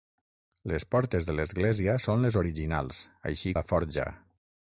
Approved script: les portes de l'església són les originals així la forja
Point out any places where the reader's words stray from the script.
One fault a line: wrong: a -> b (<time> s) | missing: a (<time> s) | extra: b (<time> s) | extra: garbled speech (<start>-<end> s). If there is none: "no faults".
no faults